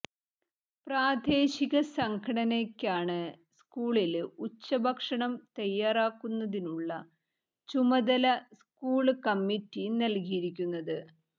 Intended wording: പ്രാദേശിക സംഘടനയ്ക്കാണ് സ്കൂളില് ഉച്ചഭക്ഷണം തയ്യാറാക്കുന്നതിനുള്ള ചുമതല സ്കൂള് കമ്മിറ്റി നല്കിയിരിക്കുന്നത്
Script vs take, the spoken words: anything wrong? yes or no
no